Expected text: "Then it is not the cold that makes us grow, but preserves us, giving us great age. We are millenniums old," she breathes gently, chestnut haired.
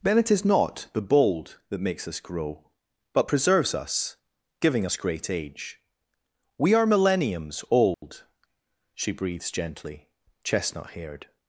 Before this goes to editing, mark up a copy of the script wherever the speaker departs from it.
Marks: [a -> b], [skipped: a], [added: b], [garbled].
"Then it is not the [cold -> bold] that makes us grow, but preserves us, giving us great age. We are millenniums old," she breathes gently, chestnut haired.